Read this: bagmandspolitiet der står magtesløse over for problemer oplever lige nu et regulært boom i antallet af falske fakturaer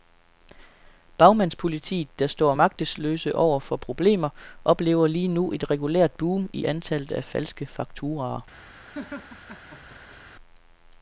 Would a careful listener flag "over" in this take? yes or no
no